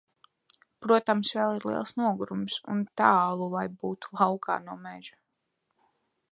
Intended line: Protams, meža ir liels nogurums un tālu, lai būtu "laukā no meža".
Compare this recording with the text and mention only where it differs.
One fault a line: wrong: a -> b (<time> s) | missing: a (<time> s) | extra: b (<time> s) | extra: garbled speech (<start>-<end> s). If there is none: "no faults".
wrong: meža -> vēl (1.4 s)